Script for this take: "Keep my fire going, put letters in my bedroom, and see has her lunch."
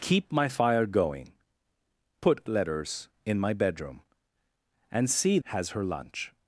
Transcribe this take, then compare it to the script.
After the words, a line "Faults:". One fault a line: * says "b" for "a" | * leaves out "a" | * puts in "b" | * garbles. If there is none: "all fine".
"Keep my fire going, put letters in my bedroom, and see has her lunch."
Faults:
all fine